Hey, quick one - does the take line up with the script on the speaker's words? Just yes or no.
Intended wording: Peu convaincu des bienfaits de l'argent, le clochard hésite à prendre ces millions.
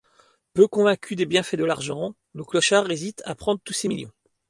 no